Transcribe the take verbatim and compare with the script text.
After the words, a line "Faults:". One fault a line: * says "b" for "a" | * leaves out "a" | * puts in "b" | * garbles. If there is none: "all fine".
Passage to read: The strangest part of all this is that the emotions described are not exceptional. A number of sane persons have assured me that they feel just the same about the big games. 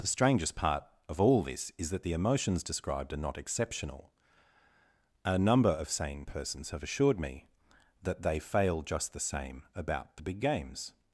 The strangest part of all this is that the emotions described are not exceptional. A number of sane persons have assured me that they fail just the same about the big games.
Faults:
* says "fail" for "feel"